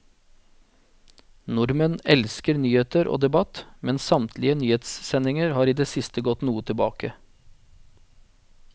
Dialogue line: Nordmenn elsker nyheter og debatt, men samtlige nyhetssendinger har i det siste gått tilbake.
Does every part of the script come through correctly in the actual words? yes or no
no